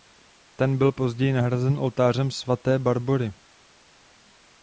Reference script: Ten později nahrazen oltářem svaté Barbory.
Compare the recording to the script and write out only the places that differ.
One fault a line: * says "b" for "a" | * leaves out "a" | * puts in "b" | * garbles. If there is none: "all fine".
* puts in "byl"